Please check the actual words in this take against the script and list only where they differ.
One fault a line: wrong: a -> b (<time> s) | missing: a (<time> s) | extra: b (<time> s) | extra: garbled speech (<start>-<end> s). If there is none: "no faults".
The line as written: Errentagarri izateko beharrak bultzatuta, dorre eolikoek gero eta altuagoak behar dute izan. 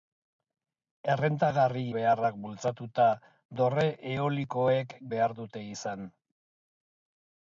missing: izateko (1.8 s)
missing: gero eta altuagoak (4.9 s)